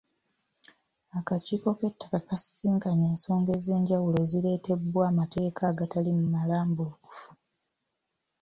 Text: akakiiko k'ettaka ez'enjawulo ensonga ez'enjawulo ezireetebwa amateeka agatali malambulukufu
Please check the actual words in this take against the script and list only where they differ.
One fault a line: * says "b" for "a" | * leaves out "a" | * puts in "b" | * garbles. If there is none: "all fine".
* says "kasisinkanye" for "ez'enjawulo"